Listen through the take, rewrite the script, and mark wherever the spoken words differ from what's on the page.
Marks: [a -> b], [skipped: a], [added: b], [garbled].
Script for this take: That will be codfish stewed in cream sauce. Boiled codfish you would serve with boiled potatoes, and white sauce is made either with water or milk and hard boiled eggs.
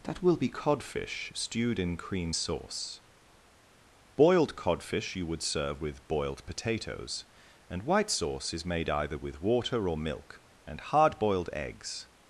That will be codfish stewed in cream sauce. Boiled codfish you would serve with boiled potatoes, and white sauce is made either with water or milk and hard boiled eggs.